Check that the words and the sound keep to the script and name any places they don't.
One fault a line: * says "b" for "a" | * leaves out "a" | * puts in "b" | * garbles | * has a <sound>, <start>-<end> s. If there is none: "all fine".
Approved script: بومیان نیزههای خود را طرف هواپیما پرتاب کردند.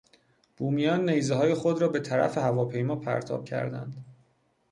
* puts in "به"